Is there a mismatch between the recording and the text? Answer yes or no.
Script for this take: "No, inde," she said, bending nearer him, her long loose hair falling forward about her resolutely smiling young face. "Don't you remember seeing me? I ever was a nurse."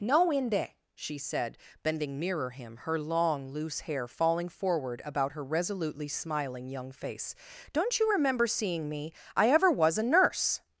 no